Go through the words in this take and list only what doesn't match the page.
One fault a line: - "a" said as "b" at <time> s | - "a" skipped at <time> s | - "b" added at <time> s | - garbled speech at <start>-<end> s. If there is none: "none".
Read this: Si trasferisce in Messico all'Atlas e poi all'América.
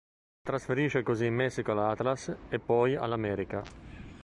- "così" added at 1.0 s